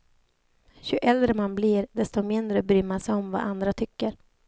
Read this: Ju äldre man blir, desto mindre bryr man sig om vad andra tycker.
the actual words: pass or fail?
pass